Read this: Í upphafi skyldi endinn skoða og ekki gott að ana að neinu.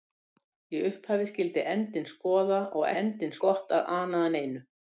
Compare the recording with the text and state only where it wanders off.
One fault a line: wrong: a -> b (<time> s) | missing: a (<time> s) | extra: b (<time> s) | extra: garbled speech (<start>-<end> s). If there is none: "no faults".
wrong: ekki -> endinn (3.0 s)